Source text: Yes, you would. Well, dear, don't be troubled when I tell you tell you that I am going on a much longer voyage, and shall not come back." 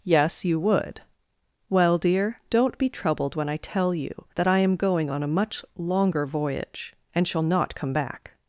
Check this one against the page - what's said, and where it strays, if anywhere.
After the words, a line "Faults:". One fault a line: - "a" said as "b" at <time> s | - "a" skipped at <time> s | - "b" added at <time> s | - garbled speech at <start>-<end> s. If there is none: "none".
Yes, you would. Well, dear, don't be troubled when I tell you that I am going on a much longer voyage, and shall not come back."
Faults:
- "tell you" skipped at 4.3 s